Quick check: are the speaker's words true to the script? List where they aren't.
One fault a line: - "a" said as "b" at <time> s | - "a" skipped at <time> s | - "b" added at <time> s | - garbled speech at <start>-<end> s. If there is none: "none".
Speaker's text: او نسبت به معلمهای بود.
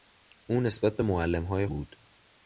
none